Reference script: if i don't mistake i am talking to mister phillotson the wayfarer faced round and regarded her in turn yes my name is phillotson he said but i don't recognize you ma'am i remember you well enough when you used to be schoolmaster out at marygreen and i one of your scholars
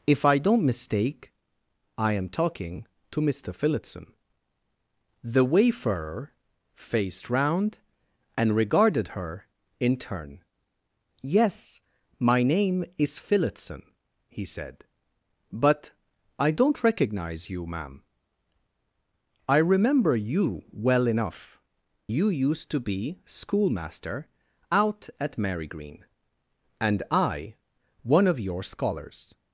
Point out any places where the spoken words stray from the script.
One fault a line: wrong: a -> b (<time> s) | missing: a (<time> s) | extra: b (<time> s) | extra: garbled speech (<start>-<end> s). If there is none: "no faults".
missing: when (21.6 s)